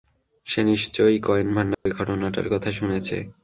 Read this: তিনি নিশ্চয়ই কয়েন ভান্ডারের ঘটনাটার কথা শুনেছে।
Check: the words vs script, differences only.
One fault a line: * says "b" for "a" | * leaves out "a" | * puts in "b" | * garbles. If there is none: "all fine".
* says "সে" for "তিনি"